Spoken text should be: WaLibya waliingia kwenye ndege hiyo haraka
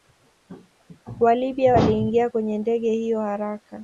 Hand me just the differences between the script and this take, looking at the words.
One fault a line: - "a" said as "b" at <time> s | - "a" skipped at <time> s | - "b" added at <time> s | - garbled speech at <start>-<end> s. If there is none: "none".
none